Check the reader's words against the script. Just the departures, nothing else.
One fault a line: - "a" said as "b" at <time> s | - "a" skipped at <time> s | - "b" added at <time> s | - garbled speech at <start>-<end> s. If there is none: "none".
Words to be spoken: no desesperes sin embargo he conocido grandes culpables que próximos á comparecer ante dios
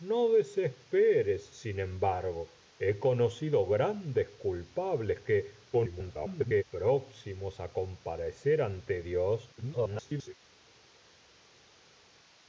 - garbled speech at 5.7-6.6 s
- garbled speech at 9.6-10.3 s